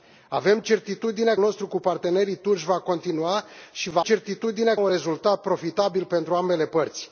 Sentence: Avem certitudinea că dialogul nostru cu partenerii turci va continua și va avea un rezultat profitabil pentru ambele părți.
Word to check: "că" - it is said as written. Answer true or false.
false